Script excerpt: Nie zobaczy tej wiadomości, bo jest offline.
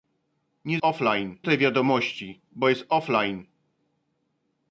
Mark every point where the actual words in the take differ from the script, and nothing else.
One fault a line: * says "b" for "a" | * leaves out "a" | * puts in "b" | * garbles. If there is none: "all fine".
* says "offline" for "zobaczy"